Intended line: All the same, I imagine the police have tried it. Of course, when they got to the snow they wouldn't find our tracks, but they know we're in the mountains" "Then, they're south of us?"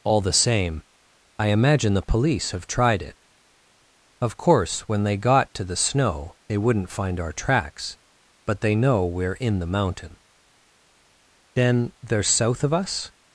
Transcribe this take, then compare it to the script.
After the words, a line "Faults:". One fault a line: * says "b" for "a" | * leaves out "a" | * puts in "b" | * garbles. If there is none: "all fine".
All the same, I imagine the police have tried it. Of course, when they got to the snow they wouldn't find our tracks, but they know we're in the mountain" "Then, they're south of us?"
Faults:
* says "mountain" for "mountains"